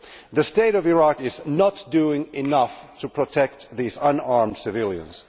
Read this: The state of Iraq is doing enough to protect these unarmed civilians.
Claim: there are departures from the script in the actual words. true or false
true